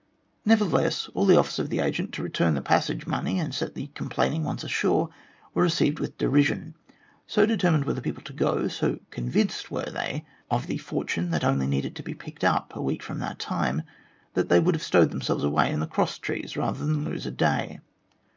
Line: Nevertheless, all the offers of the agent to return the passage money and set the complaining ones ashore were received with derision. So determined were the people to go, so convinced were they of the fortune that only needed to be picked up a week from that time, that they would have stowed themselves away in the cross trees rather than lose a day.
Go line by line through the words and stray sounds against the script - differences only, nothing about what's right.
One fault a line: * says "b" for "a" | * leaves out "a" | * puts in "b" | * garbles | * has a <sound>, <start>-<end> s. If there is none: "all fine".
all fine